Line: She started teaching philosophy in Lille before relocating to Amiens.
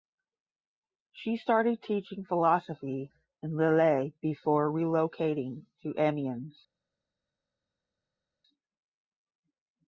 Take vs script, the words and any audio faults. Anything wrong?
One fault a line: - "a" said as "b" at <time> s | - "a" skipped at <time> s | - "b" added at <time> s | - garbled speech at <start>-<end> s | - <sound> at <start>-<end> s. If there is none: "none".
none